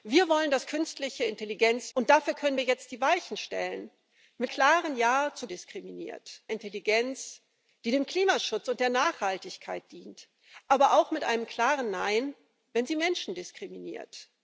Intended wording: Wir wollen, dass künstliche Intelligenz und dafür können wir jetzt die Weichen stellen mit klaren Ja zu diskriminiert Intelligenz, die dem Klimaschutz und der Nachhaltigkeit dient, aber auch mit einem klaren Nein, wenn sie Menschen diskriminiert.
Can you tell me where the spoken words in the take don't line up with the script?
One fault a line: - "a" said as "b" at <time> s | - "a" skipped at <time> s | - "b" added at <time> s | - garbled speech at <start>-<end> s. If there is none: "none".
none